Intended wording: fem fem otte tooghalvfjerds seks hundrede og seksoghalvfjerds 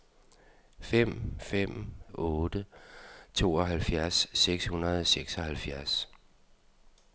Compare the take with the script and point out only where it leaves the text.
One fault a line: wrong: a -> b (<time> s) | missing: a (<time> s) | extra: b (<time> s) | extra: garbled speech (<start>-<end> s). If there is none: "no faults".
no faults